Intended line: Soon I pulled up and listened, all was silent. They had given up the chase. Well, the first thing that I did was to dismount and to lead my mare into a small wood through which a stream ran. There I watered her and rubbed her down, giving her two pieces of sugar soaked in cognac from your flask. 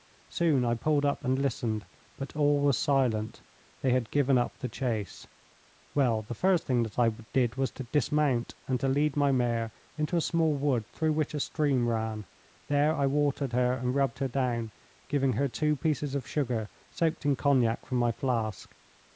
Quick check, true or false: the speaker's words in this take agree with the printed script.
false